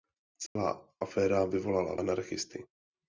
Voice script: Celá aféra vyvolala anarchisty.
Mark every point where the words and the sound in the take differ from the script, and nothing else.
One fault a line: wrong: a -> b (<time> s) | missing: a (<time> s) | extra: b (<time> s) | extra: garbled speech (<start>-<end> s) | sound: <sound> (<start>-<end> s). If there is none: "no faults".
sound: dropout (0.5-0.6 s)